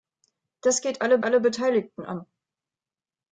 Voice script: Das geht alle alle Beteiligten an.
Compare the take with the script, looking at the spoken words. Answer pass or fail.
pass